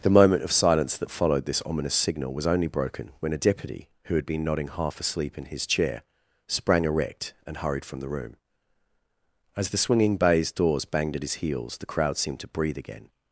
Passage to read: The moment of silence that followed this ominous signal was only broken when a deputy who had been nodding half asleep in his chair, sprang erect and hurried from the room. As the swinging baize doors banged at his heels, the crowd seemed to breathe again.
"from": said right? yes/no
yes